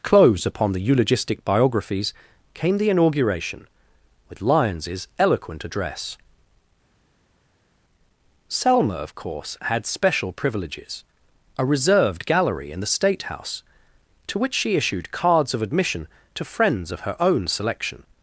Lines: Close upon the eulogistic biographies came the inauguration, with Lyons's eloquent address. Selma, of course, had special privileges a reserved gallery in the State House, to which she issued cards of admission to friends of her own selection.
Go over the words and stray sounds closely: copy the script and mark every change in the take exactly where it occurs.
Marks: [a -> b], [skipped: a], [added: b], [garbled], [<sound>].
Close upon the eulogistic biographies came the inauguration, with Lyons's eloquent address. Selma, of course, had special privileges a reserved gallery in the State House, to which she issued cards of admission to friends of her own selection.